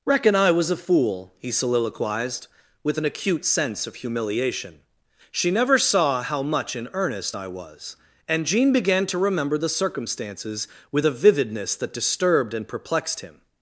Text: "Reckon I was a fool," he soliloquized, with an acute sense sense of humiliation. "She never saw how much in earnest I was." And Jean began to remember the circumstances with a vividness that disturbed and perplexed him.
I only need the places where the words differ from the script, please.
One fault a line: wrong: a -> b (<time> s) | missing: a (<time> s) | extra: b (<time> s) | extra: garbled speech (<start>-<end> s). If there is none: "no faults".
missing: sense (3.9 s)